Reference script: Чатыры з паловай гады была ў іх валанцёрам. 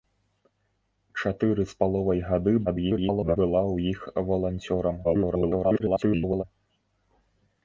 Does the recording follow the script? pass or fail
fail